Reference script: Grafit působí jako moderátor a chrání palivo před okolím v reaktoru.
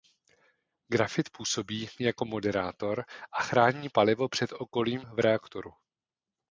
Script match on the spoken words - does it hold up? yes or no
yes